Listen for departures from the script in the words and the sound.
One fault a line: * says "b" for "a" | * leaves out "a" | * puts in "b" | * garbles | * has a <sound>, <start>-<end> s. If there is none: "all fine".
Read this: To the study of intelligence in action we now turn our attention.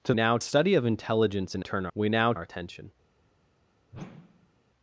* says "now" for "the"
* says "turn" for "action"
* leaves out "turn"
* has a whoosh, 3.9-4.6 s